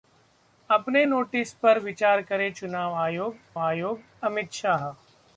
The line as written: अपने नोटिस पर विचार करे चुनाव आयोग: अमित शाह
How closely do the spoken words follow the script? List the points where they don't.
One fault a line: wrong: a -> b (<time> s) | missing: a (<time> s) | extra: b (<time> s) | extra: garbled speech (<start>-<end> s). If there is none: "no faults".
extra: आयोग (3.6 s)